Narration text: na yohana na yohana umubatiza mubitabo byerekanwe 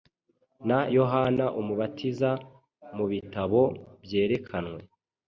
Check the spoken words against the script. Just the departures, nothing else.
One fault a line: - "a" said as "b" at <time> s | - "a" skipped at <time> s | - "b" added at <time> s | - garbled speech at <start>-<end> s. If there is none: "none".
- "na yohana" skipped at 1.4 s